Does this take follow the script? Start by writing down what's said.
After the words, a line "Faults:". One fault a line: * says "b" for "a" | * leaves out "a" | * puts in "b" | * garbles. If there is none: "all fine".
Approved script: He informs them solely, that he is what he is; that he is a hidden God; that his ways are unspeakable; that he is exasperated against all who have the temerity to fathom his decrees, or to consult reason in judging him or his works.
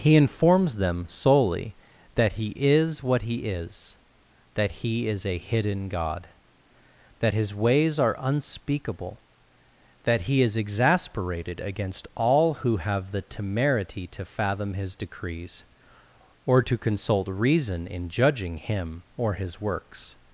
He informs them solely, that he is what he is; that he is a hidden God; that his ways are unspeakable; that he is exasperated against all who have the temerity to fathom his decrees, or to consult reason in judging him or his works.
Faults:
all fine